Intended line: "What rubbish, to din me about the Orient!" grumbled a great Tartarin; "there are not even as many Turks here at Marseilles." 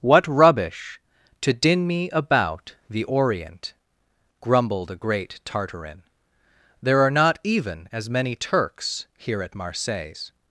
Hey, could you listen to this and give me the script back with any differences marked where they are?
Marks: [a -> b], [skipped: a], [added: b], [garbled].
"What rubbish, to din me about the Orient!" grumbled a great Tartarin; "there are not even as many Turks here at Marseilles."